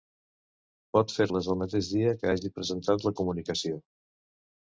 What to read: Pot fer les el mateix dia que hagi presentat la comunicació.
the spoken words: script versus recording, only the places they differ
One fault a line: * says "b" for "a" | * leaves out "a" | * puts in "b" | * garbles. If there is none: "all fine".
all fine